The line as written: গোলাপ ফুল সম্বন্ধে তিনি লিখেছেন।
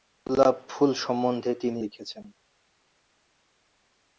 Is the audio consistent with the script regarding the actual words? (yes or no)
yes